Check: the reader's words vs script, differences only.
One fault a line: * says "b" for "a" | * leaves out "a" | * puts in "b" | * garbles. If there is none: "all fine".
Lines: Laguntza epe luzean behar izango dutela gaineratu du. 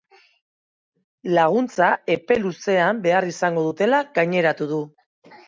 all fine